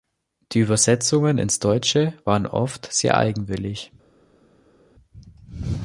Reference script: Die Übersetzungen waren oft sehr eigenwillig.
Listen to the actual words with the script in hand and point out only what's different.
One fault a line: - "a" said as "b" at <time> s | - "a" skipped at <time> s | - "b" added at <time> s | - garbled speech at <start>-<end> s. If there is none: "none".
- "ins Deutsche" added at 1.4 s